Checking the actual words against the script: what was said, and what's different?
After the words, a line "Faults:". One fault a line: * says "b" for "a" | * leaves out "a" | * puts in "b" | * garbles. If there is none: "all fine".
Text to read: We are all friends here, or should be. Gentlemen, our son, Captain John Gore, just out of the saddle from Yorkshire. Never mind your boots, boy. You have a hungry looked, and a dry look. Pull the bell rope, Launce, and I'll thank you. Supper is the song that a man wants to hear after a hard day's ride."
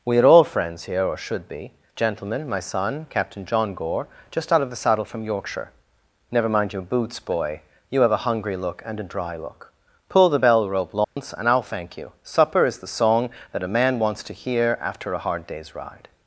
We are all friends here, or should be. Gentlemen, my son, Captain John Gore, just out of the saddle from Yorkshire. Never mind your boots, boy. You have a hungry look, and a dry look. Pull the bell rope, Launce, and I'll thank you. Supper is the song that a man wants to hear after a hard day's ride."
Faults:
* says "my" for "our"
* says "look" for "looked"